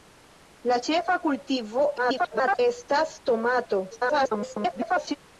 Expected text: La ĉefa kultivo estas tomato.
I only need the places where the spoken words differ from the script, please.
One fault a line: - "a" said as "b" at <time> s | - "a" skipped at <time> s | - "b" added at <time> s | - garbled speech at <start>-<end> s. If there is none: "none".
- garbled speech at 2.0-2.6 s
- garbled speech at 3.9-5.2 s